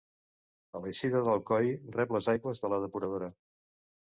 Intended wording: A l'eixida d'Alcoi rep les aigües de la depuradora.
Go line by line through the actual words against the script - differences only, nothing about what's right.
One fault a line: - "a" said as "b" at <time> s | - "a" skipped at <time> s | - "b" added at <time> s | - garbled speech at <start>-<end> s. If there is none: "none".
none